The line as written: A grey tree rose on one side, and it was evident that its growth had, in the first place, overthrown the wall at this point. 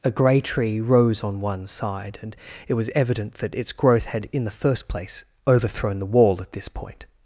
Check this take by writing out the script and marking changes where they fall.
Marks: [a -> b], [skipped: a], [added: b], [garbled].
A grey tree rose on one side, and it was evident that its growth had, in the first place, overthrown the wall at this point.